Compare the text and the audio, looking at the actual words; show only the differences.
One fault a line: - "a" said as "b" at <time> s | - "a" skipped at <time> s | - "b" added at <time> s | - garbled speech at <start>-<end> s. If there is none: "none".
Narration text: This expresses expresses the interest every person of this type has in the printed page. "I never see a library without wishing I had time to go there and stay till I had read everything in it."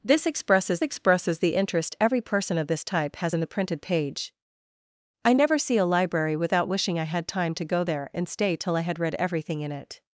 none